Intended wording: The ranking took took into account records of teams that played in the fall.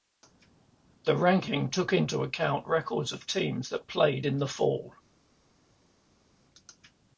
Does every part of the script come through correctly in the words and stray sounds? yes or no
no